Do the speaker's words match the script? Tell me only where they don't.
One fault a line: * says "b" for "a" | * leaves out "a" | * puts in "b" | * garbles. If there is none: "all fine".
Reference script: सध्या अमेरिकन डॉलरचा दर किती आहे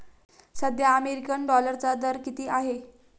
all fine